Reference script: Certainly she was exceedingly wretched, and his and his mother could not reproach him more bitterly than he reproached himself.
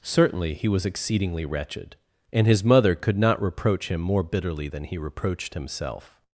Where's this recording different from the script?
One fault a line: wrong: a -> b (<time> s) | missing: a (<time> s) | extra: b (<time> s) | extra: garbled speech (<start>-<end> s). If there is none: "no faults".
wrong: she -> he (0.6 s)
missing: and his (2.6 s)